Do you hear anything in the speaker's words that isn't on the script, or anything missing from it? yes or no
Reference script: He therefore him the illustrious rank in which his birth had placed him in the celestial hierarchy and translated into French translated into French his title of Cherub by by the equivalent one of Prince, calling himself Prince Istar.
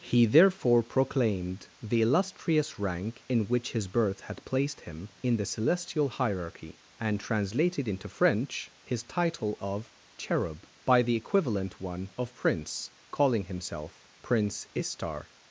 yes